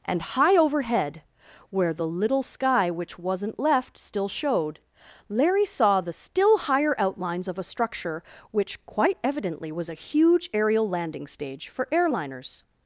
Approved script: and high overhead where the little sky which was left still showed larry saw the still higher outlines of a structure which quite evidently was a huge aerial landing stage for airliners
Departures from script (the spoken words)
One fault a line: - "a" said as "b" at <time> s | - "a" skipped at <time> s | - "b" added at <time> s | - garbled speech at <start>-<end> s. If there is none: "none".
- "was" said as "wasn't" at 3.2 s